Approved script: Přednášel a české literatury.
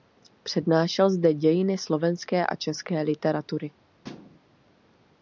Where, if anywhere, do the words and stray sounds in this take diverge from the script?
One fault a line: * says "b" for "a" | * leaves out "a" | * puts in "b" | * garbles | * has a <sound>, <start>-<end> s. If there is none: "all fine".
* puts in "zde dějiny slovenské"
* has a thud, 4.0-4.4 s